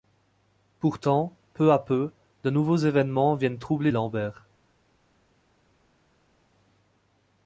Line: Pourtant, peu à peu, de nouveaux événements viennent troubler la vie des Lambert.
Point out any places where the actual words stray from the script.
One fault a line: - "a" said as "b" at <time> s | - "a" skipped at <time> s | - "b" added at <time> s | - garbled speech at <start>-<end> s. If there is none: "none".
- "la vie des" skipped at 3.9 s